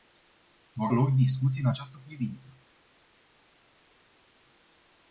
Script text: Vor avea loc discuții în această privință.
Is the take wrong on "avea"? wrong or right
wrong